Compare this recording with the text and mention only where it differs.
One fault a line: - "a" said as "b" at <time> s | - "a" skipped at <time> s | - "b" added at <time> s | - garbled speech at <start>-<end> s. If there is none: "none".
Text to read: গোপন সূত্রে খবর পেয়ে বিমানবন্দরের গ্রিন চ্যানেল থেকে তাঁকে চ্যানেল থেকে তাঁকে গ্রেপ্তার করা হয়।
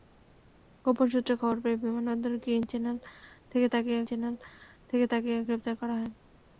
none